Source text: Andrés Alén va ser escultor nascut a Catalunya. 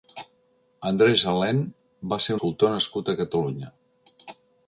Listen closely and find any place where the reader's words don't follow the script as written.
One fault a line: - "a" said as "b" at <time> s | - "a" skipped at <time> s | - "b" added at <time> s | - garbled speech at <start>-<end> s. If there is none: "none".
none